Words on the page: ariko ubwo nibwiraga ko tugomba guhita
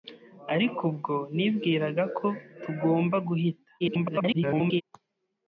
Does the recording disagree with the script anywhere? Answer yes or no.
yes